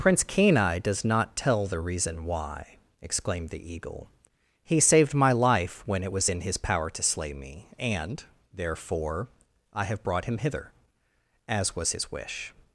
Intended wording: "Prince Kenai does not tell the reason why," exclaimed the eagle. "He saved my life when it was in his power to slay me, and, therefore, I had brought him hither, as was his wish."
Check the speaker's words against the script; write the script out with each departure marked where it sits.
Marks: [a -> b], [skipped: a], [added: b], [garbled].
"Prince Kenai does not tell the reason why," exclaimed the eagle. "He saved my life when it was in his power to slay me, and, therefore, I [had -> have] brought him hither, as was his wish."